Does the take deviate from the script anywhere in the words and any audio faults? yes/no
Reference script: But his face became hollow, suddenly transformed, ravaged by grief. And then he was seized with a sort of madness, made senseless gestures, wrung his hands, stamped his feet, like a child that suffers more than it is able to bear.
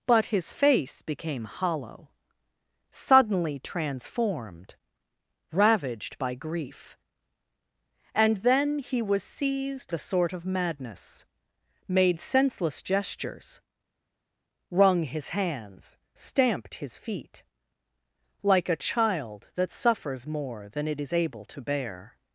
yes